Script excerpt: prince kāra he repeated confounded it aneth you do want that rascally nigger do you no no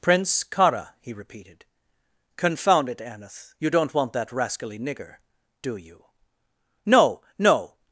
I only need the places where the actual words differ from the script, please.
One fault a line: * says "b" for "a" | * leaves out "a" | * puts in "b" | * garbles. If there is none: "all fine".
* says "confound" for "confounded"
* says "don't" for "do"